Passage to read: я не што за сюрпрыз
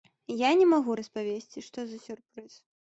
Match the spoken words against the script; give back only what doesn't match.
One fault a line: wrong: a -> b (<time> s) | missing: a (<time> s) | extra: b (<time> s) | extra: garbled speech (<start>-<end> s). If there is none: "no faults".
extra: магу распавесці (0.7 s)